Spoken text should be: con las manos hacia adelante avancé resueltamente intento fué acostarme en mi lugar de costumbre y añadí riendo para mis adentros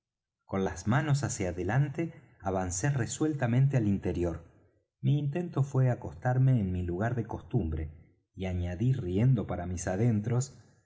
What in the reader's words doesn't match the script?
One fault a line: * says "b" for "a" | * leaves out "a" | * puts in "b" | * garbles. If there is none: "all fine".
* puts in "al interior mi"